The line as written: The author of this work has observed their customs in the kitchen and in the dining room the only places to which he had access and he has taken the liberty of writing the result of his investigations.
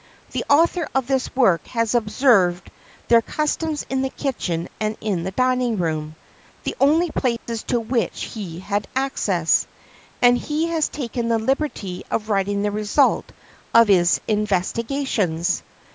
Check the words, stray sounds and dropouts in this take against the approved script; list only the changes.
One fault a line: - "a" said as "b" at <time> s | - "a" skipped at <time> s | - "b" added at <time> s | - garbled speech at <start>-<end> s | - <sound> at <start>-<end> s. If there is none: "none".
- dropout at 7.4-7.5 s